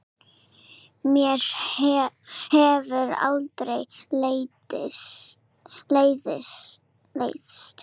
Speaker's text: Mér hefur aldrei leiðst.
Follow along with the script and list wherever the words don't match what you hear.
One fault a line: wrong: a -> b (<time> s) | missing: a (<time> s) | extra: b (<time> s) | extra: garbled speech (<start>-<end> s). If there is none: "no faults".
no faults